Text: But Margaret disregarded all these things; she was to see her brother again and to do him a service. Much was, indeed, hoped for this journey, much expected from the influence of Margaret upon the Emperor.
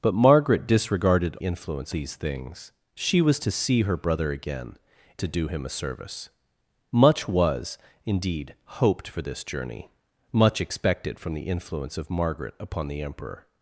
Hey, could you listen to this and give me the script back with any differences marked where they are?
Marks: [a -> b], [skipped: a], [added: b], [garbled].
But Margaret disregarded [all -> influence] these things; she was to see her brother again [skipped: and] to do him a service. Much was, indeed, hoped for this journey, much expected from the influence of Margaret upon the Emperor.